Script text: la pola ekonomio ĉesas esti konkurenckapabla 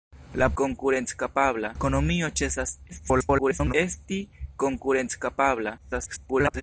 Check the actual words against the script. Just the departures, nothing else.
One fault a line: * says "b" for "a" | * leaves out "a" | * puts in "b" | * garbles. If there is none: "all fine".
* says "konkurenckapabla" for "pola"
* garbles
* garbles